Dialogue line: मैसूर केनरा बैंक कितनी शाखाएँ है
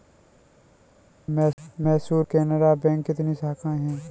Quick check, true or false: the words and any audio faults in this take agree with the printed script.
true